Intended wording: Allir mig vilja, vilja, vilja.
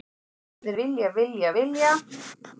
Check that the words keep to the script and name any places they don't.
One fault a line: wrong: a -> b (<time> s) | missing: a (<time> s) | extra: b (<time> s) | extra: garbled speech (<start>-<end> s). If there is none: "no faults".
missing: mig (0.8 s)